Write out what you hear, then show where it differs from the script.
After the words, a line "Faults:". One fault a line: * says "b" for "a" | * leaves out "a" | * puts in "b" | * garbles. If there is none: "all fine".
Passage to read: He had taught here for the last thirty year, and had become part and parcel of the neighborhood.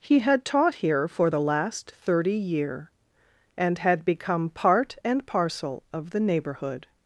He had taught here for the last thirty year, and had become part and parcel of the neighborhood.
Faults:
all fine